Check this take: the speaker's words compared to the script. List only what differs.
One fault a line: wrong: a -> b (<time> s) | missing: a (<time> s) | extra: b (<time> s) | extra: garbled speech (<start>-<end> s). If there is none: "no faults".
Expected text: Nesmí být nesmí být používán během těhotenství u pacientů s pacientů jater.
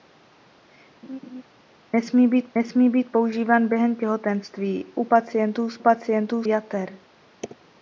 no faults